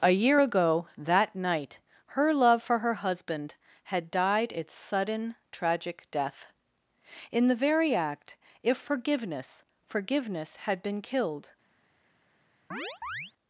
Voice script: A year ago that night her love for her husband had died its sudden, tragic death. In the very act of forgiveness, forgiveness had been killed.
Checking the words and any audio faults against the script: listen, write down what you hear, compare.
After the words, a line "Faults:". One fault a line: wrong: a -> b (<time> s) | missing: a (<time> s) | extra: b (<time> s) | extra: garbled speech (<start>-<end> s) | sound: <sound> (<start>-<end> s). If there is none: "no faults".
A year ago that night her love for her husband had died its sudden, tragic death. In the very act if forgiveness, forgiveness had been killed.
Faults:
wrong: of -> if (8.6 s)
sound: chirp (12.7-13.3 s)